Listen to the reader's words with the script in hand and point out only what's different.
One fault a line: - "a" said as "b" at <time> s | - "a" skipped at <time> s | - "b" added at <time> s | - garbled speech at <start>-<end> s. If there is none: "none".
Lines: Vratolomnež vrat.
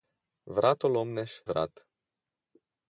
none